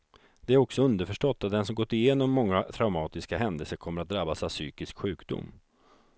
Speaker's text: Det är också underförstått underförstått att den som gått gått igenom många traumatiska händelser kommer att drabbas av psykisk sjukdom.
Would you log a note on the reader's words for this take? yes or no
yes